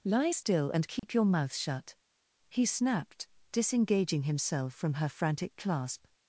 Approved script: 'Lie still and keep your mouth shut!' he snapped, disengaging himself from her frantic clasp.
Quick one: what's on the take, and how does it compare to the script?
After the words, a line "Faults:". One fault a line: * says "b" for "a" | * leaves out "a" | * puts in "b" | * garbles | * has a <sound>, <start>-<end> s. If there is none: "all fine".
'Lie still and keep your mouth shut!' he snapped, disengaging himself from her frantic clasp.
Faults:
* has a dropout, 1.0-1.0 s